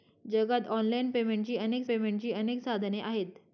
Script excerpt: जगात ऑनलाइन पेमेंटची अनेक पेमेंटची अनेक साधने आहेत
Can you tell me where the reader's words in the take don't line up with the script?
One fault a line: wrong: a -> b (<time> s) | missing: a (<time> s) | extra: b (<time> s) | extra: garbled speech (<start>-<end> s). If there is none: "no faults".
no faults